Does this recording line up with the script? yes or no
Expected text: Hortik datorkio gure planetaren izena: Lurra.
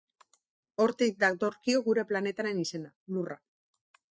yes